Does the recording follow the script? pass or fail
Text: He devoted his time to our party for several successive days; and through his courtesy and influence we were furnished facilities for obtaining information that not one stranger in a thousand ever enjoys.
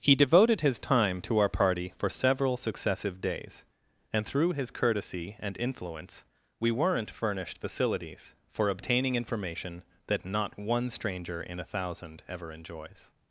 fail